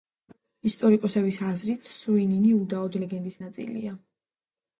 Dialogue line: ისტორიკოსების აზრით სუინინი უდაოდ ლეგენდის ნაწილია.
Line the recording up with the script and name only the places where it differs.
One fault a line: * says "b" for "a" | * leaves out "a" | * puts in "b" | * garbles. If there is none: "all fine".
all fine